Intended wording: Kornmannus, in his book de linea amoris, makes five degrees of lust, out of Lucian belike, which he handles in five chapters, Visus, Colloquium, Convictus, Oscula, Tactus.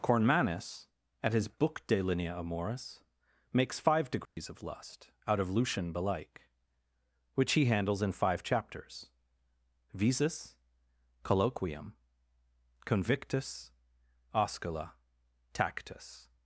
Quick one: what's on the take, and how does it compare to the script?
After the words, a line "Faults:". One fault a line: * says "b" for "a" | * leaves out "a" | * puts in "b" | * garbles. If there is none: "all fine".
Kornmannus, at his book de linea amoris, makes five degrees of lust, out of Lucian belike, which he handles in five chapters, Visus, Colloquium, Convictus, Oscula, Tactus.
Faults:
* says "at" for "in"